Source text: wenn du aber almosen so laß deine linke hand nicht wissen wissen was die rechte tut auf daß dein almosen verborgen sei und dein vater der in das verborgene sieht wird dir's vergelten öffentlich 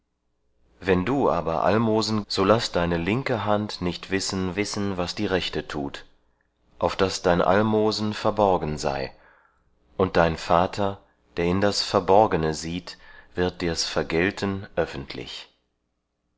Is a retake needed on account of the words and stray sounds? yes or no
no